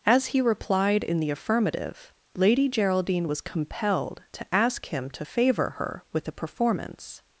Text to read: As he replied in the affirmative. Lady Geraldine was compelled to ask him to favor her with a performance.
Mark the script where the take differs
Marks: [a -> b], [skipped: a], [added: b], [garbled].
As he replied in the affirmative. Lady Geraldine was compelled to ask him to favor her with a performance.